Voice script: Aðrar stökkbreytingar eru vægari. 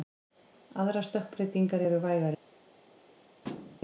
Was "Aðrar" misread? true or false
false